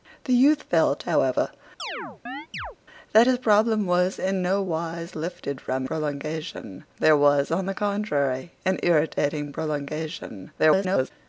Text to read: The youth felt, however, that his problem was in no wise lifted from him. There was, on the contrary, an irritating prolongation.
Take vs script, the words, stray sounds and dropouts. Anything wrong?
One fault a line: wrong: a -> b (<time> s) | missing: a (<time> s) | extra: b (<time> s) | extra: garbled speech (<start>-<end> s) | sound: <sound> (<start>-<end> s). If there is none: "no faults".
sound: chirp (1.8-2.8 s)
wrong: him -> prolongation (5.8 s)
extra: garbled speech (10.6-11.1 s)